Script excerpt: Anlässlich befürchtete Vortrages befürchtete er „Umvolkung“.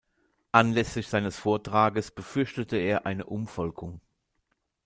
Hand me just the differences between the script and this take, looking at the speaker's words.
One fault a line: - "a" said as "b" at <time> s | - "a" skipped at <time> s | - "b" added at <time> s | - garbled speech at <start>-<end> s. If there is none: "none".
- "befürchtete" said as "seines" at 1.1 s
- "eine" added at 3.1 s